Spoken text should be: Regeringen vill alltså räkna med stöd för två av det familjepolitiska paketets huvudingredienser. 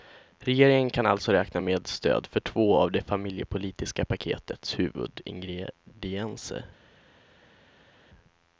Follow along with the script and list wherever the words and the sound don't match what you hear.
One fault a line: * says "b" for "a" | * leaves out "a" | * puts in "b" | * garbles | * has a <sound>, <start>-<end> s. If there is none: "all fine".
* says "kan" for "vill"